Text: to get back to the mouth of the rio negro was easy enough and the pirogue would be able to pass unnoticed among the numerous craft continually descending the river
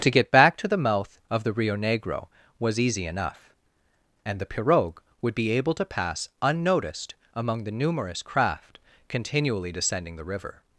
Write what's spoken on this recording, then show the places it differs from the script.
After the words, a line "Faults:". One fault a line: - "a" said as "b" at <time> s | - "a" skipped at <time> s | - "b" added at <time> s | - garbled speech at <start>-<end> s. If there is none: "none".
to get back to the mouth of the rio negro was easy enough and the pirogue would be able to pass unnoticed among the numerous craft continually descending the river
Faults:
none